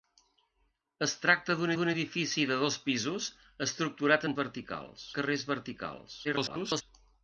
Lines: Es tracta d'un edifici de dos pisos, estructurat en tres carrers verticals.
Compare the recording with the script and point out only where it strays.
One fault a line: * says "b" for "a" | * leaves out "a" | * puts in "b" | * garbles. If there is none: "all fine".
* puts in "d'un"
* says "verticals" for "tres"
* garbles